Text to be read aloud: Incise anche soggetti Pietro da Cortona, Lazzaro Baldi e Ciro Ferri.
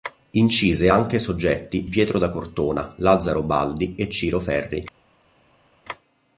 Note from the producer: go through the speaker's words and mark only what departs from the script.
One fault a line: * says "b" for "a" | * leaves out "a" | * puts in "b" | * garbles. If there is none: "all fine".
all fine